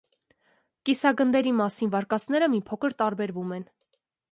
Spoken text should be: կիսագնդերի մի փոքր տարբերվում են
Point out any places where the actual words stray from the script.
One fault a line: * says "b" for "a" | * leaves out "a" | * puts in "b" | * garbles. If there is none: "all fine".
* puts in "մասին վարկածները"